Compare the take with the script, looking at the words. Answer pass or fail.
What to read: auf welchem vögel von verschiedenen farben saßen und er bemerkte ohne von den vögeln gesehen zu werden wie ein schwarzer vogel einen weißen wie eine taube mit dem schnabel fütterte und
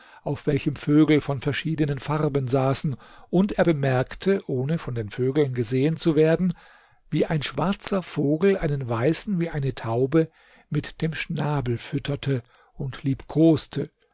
pass